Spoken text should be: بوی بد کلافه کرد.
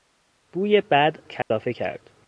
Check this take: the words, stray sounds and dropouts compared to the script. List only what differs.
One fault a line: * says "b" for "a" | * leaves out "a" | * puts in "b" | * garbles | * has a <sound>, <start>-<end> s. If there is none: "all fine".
* has a dropout, 1.4-1.5 s